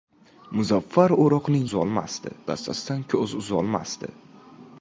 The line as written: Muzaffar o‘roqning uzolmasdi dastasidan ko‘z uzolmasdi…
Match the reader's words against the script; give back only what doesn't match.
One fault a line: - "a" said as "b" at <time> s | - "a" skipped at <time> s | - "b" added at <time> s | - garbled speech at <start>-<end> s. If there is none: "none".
none